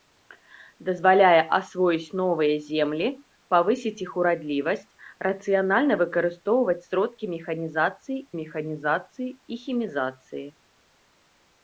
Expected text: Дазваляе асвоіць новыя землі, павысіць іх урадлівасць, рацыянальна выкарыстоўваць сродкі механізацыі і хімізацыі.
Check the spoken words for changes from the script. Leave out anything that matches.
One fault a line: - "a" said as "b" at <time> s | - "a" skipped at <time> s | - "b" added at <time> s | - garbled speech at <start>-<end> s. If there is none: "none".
- "механізацыі" added at 8.4 s